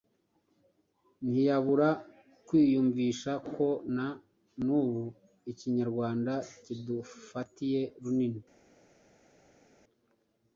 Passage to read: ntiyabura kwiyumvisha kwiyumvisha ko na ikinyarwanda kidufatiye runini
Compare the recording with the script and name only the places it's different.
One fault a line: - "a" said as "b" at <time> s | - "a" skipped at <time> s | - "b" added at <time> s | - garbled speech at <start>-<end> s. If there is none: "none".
- "kwiyumvisha" skipped at 3.3 s
- "n'ubu" added at 4.6 s